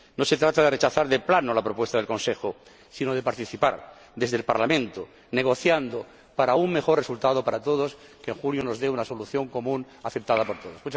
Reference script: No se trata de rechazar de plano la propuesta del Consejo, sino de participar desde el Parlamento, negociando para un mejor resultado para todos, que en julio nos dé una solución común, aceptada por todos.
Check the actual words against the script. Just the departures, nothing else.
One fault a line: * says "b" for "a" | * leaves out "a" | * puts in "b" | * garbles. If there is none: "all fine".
all fine